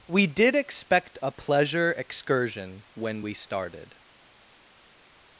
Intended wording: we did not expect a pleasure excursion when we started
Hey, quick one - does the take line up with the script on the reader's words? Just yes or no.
no